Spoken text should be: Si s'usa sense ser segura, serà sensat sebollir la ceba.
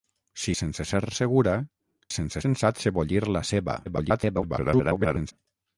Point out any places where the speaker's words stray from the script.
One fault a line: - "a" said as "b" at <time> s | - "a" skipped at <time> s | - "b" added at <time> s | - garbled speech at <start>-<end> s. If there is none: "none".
- "s'usa" skipped at 0.5 s
- "serà" said as "sense" at 2.2 s
- garbled speech at 3.9-5.3 s